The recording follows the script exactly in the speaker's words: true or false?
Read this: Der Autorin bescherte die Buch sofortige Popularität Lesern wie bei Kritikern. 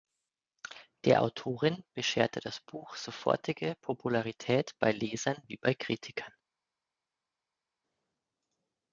false